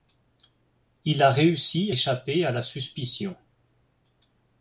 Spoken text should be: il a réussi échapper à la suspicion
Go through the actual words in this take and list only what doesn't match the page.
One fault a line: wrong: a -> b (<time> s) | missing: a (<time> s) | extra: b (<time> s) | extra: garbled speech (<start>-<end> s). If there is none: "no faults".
no faults